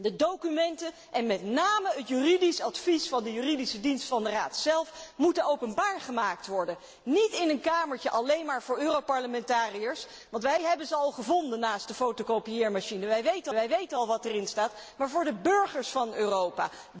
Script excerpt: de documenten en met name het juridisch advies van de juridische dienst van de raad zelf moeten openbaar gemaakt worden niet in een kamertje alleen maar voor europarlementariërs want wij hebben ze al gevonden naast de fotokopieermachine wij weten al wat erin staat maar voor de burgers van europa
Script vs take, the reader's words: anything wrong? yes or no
yes